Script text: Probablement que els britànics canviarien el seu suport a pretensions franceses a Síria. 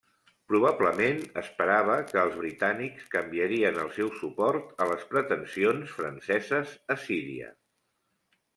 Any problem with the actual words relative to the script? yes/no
yes